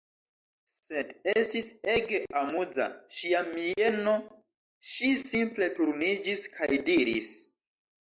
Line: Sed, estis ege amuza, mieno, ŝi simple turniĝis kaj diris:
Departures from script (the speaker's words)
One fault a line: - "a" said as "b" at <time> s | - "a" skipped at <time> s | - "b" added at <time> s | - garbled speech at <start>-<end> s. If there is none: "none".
- "ŝia" added at 3.2 s